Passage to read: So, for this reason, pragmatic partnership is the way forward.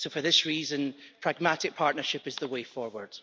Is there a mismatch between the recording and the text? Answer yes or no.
no